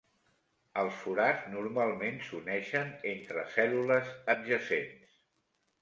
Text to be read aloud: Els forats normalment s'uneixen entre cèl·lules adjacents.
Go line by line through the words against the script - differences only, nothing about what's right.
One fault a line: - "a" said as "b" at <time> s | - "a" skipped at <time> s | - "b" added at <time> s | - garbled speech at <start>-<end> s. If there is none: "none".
none